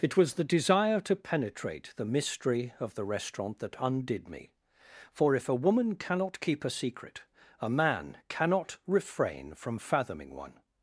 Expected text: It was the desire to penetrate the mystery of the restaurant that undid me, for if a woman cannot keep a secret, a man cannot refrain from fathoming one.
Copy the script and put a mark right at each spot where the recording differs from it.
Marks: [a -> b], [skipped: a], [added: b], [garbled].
It was the desire to penetrate the mystery of the restaurant that undid me, for if a woman cannot keep a secret, a man cannot refrain from fathoming one.